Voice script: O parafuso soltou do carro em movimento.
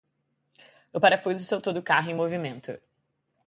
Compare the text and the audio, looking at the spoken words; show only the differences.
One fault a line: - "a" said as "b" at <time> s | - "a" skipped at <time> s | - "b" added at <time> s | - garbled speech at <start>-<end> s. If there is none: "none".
none